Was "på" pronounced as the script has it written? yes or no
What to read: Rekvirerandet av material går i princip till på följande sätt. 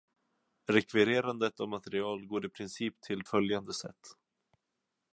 no